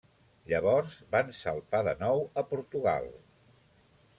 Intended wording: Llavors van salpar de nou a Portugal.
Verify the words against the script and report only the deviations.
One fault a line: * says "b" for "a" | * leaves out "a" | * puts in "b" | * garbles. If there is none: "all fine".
all fine